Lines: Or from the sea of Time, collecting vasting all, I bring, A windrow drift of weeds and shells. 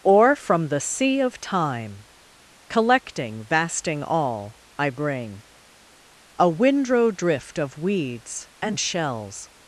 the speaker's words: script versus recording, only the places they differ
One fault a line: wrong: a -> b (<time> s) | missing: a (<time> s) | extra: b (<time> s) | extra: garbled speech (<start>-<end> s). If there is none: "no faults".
no faults